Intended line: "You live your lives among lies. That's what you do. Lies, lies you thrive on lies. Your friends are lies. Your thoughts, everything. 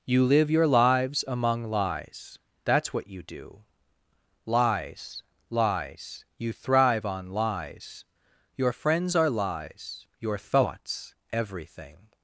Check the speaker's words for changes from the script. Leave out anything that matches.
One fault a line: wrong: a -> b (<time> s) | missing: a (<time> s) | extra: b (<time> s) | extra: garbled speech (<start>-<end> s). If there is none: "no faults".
no faults